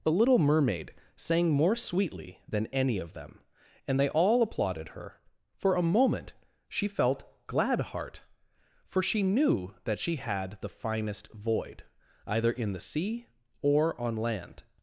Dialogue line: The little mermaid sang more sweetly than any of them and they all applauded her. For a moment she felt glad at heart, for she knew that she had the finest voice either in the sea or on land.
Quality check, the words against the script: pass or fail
fail